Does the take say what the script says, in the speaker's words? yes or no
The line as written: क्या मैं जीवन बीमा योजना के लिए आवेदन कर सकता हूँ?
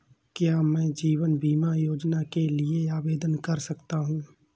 yes